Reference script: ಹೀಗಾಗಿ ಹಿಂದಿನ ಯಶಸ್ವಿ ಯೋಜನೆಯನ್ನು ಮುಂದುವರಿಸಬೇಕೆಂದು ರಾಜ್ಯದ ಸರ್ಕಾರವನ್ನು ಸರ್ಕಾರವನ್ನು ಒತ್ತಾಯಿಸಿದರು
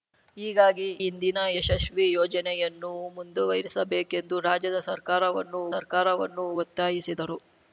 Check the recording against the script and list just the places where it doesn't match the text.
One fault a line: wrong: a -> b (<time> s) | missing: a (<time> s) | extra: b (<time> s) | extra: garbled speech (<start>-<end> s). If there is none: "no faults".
no faults